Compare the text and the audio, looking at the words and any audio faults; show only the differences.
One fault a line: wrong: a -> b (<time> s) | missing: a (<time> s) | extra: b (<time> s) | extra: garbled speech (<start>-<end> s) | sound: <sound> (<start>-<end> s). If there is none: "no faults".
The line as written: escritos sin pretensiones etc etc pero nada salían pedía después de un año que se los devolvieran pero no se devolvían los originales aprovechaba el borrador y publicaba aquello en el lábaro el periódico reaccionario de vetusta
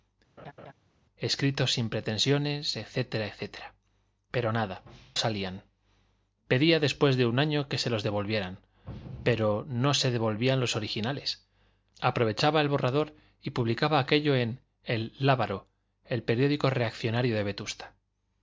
sound: laugh (0.4-0.7 s)